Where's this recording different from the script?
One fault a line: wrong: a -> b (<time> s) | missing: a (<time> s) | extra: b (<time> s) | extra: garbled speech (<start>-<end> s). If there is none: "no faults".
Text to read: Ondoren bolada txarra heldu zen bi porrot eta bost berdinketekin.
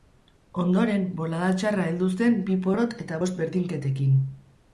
no faults